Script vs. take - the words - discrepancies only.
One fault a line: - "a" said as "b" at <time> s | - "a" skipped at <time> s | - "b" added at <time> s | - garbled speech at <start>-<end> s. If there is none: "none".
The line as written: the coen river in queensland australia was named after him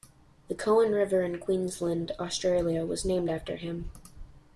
none